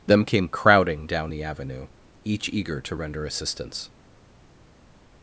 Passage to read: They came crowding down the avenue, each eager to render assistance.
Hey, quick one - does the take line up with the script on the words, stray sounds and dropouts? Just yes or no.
no